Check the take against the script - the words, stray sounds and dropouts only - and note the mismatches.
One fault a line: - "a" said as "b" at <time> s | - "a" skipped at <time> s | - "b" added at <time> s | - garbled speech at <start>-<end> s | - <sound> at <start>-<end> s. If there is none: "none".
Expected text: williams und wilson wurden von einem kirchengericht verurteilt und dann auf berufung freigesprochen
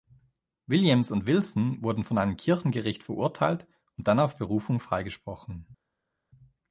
none